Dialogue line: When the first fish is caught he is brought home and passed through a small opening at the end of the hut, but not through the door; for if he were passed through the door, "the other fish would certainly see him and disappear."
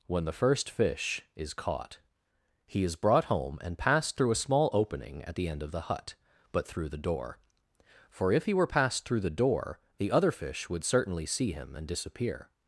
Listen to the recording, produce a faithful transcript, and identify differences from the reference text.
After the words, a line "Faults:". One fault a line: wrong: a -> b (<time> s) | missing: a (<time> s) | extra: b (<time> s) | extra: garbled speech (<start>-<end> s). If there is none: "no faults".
When the first fish is caught he is brought home and passed through a small opening at the end of the hut, but through the door; for if he were passed through the door, "the other fish would certainly see him and disappear."
Faults:
missing: not (6.7 s)